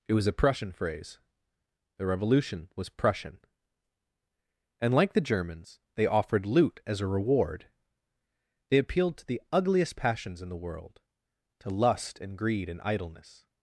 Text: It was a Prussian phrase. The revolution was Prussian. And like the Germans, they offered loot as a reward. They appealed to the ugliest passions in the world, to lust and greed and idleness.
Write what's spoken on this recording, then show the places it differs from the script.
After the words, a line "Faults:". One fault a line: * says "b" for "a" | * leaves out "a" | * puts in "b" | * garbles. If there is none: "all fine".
It was a Prussian phrase. The revolution was Prussian. And like the Germans, they offered loot as a reward. They appealed to the ugliest passions in the world, to lust and greed and idleness.
Faults:
all fine